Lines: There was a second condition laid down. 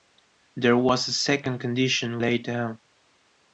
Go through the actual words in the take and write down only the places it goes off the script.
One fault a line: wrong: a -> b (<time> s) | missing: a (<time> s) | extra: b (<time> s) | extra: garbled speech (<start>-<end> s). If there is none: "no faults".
no faults